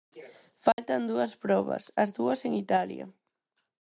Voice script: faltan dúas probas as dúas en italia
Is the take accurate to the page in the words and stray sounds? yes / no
no